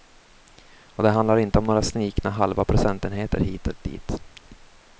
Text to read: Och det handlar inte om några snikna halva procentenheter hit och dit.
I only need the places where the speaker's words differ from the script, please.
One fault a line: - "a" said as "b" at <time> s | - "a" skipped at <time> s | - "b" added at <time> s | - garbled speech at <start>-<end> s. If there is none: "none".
none